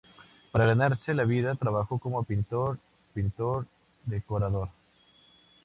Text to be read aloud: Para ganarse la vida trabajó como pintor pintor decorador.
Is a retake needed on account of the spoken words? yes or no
no